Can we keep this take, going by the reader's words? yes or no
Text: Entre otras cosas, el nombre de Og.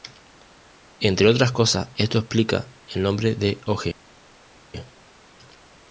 no